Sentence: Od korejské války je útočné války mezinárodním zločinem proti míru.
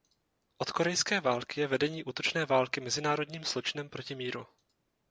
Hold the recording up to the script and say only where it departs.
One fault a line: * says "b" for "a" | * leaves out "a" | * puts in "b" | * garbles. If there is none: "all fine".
* puts in "vedení"